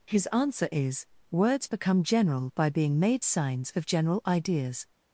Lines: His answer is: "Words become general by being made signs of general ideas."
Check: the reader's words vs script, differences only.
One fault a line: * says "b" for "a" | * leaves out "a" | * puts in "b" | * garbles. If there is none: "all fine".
all fine